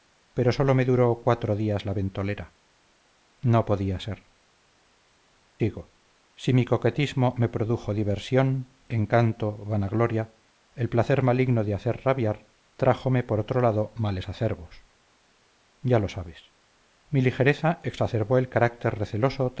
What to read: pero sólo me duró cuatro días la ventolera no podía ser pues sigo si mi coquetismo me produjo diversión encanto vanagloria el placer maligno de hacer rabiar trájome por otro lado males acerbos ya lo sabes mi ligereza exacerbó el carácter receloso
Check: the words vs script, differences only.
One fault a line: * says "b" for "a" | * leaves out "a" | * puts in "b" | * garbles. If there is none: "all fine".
* leaves out "pues"